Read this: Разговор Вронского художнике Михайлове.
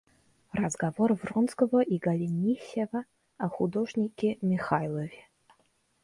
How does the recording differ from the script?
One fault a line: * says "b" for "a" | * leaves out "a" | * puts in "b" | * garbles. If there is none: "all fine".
* puts in "и Голенищева о"